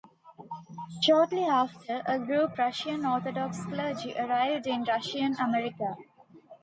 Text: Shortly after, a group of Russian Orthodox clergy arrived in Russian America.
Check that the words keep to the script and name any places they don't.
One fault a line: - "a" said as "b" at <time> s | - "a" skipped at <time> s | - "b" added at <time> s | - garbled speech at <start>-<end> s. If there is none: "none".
- "of" skipped at 2.6 s